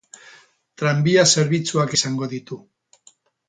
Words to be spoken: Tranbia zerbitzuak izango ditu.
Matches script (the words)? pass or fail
pass